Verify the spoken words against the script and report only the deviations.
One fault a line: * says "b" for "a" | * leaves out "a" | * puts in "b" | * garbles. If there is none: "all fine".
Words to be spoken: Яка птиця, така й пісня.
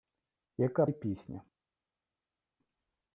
* leaves out "птиця така"